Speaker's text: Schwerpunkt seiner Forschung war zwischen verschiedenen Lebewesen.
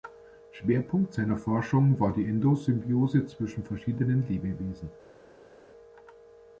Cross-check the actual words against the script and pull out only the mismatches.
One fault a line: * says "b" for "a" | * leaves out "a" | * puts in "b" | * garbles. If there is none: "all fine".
* puts in "die Endosymbiose"